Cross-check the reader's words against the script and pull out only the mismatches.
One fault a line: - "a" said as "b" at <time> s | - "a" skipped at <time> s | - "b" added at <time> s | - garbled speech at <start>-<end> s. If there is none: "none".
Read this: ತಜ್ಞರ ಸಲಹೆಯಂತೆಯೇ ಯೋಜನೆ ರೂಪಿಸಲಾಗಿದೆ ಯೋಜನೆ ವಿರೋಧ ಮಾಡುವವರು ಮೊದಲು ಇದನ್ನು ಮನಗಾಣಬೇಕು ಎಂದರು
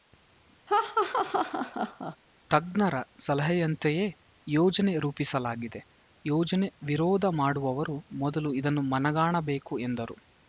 none